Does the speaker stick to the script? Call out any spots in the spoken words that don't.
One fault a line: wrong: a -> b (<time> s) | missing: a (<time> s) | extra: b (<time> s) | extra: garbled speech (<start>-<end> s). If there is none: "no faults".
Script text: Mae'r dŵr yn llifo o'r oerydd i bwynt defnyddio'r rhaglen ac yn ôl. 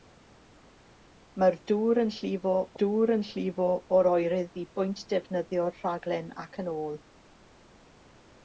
extra: dŵr yn llifo (2.8 s)